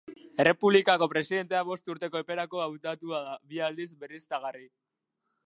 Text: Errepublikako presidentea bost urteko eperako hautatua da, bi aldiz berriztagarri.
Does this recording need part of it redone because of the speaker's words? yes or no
no